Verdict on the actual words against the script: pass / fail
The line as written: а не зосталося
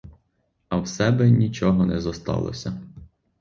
fail